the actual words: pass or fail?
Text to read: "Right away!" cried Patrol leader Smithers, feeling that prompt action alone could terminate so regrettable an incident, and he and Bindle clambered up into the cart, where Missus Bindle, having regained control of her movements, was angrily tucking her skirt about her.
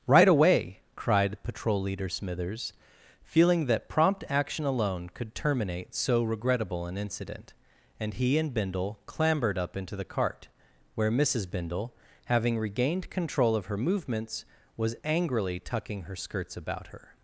fail